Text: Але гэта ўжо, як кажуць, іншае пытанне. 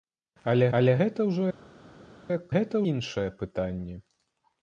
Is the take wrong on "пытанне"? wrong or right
right